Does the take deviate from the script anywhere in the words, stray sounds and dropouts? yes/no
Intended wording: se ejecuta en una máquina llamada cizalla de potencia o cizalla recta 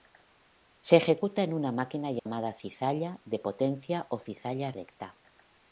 yes